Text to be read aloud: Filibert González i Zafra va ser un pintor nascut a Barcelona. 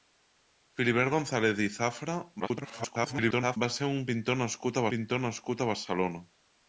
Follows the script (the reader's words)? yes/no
no